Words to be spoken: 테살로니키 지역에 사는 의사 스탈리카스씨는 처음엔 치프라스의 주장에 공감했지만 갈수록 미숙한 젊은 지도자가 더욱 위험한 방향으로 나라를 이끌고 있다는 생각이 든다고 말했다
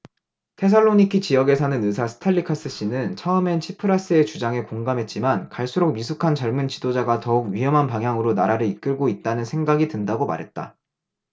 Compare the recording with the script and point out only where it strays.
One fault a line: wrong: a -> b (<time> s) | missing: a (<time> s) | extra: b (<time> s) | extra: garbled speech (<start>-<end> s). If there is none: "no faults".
no faults